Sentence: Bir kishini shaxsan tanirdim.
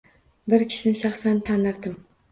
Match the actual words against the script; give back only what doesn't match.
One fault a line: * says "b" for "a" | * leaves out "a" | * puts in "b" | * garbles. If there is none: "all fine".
all fine